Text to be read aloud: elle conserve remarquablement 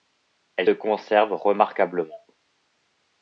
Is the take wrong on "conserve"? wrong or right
right